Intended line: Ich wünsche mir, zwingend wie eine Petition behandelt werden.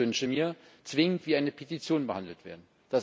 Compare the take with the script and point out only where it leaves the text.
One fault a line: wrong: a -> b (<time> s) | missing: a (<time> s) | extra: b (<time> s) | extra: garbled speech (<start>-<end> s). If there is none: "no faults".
no faults